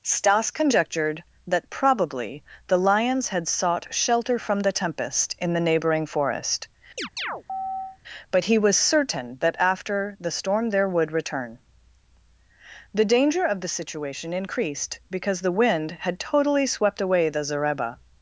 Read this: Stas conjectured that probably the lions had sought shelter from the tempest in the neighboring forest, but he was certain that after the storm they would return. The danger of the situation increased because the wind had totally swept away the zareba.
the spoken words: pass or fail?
fail